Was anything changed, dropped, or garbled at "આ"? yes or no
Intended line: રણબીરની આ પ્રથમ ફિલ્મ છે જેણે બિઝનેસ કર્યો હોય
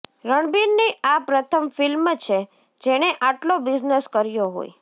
no